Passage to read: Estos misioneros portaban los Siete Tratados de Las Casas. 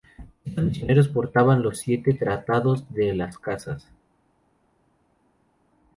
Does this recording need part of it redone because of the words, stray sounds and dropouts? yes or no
no